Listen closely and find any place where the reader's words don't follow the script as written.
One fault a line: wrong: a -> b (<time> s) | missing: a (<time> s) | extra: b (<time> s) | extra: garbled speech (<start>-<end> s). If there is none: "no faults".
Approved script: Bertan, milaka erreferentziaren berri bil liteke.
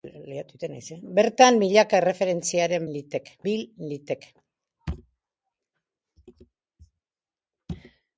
wrong: berri -> liteke (2.9 s)